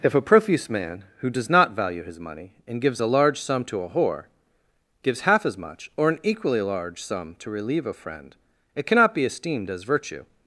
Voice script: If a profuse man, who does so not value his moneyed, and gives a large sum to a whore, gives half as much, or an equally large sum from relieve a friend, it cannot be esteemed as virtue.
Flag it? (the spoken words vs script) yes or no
yes